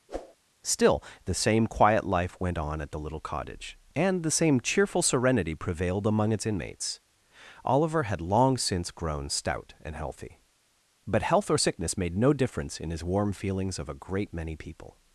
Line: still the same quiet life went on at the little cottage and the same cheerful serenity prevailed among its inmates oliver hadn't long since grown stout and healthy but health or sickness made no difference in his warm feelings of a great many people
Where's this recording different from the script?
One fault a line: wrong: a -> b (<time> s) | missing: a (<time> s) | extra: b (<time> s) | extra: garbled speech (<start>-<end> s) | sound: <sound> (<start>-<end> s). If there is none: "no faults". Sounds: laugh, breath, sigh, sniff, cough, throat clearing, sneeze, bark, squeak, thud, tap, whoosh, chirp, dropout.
sound: whoosh (0.1-0.4 s)
wrong: hadn't -> had (8.0 s)